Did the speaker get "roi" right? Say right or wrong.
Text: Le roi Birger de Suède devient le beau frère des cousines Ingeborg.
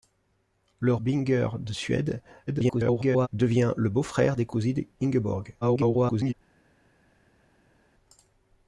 wrong